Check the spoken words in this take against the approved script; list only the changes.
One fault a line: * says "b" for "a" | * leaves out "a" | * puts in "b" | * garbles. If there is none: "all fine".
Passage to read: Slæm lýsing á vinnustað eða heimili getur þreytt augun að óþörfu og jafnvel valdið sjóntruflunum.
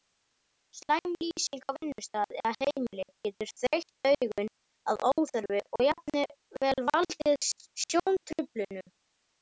all fine